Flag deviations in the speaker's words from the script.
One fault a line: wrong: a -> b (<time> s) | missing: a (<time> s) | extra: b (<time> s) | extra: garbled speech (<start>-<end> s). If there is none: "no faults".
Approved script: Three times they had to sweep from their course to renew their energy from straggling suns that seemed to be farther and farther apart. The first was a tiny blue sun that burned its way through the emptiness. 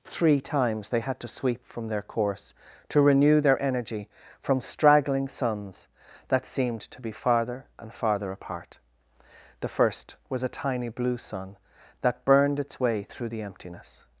no faults